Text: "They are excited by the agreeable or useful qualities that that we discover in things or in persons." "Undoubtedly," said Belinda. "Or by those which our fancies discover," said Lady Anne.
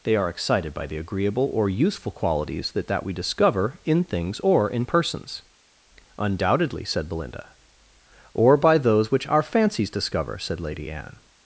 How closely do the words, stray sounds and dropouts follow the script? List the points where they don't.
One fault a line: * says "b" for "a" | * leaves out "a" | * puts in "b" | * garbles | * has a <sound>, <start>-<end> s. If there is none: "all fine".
all fine